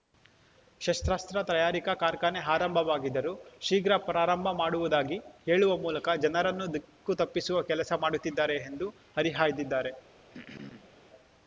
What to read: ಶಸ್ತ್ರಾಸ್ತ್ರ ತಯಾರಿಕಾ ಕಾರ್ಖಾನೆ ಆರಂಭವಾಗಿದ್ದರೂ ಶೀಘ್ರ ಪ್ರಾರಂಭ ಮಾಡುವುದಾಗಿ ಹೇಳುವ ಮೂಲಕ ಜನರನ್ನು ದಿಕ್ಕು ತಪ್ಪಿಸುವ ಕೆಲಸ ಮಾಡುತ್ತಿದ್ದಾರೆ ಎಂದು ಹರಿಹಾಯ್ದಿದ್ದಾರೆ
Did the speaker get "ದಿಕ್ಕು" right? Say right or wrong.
right